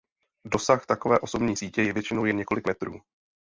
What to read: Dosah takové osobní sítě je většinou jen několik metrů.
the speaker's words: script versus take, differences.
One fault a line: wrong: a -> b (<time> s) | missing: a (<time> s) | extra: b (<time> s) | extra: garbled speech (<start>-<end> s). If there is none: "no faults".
no faults